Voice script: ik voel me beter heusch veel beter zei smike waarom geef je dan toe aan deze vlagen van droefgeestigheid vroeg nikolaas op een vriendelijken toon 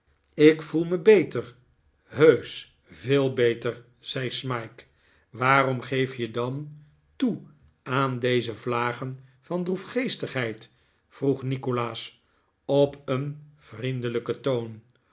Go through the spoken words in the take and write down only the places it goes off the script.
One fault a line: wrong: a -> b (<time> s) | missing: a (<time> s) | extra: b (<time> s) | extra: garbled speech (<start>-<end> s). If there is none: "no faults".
no faults